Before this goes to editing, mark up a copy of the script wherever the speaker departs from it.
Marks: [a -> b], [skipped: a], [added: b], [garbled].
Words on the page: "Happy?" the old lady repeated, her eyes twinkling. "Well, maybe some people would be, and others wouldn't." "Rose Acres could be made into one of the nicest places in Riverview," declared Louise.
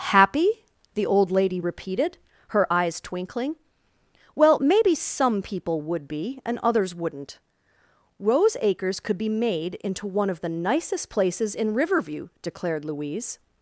"Happy?" the old lady repeated, her eyes twinkling. "Well, maybe some people would be, and others wouldn't." "Rose Acres could be made into one of the nicest places in Riverview," declared Louise.